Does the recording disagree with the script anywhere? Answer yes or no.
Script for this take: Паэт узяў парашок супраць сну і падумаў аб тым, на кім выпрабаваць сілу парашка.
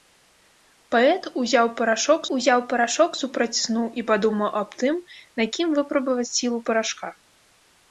yes